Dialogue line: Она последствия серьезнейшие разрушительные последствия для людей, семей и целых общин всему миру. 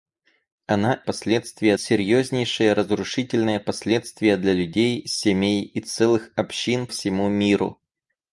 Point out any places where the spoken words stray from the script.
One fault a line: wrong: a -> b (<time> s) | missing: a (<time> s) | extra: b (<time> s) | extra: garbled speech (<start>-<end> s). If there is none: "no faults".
no faults